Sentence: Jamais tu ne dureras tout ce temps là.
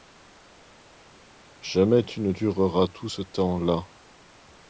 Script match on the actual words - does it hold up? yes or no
yes